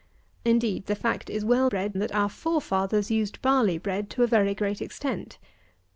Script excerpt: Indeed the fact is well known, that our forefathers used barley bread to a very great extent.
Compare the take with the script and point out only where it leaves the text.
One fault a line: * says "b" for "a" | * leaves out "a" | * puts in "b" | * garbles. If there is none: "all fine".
* says "bread" for "known"